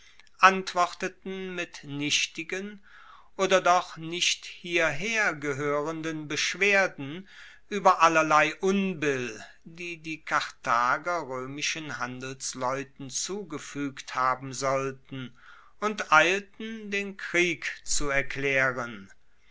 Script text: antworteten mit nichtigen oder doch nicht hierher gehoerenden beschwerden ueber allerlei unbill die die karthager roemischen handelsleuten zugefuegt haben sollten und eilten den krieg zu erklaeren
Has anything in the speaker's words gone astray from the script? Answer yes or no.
no